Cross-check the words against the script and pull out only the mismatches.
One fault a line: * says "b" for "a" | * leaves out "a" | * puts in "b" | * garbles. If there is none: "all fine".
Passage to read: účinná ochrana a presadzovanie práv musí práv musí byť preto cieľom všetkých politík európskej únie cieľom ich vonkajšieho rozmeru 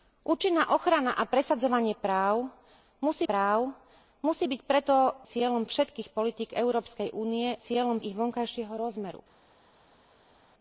all fine